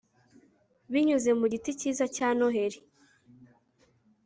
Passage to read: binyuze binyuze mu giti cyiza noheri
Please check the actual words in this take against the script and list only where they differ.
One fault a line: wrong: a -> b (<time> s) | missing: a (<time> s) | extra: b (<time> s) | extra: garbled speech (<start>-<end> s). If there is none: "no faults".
missing: binyuze (1.3 s)
extra: cya (2.2 s)